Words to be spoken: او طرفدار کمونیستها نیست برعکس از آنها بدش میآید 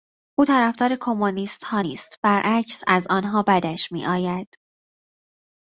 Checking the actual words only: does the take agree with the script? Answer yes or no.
yes